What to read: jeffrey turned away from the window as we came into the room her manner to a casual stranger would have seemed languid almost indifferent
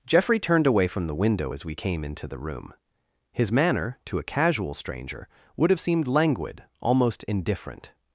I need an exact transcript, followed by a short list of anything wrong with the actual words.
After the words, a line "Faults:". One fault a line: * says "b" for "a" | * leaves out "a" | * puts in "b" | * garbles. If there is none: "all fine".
jeffrey turned away from the window as we came into the room his manner to a casual stranger would have seemed languid almost indifferent
Faults:
* says "his" for "her"